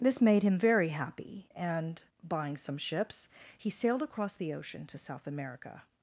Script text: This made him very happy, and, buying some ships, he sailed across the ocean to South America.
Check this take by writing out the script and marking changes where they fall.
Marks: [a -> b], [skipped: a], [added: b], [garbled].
This made him very happy, and, buying some ships, he sailed across the ocean to South America.